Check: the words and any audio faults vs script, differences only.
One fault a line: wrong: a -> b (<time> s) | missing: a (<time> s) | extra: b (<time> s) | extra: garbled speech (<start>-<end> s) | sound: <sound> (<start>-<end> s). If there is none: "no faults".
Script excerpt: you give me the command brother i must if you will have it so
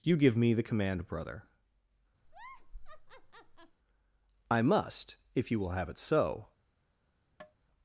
sound: laugh (2.2-3.8 s)
sound: tap (7.4-7.5 s)